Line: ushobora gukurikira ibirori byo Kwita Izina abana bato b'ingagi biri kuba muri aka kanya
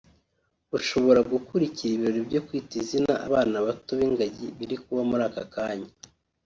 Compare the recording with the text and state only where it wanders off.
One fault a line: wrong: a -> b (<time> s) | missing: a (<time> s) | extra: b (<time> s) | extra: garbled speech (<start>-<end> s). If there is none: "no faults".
no faults